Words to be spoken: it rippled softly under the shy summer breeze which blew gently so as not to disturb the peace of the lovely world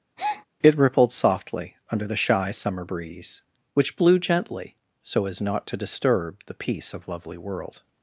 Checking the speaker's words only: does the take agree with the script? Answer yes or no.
no